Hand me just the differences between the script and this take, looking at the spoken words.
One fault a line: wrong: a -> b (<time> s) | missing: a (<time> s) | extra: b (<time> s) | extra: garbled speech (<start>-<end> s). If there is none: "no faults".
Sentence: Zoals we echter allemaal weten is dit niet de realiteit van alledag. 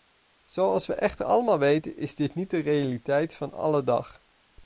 no faults